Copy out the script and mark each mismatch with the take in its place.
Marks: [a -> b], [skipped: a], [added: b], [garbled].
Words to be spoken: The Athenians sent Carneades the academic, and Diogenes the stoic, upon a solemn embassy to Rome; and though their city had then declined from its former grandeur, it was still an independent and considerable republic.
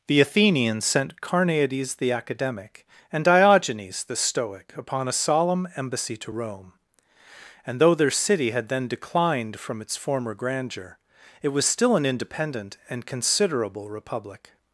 The Athenians sent Carneades the academic, and Diogenes the stoic, upon a solemn embassy to Rome; and though their city had then declined from its former grandeur, it was still an independent and considerable republic.